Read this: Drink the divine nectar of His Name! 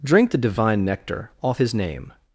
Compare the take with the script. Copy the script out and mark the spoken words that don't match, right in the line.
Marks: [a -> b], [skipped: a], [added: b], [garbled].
Drink the divine nectar [of -> off] His Name!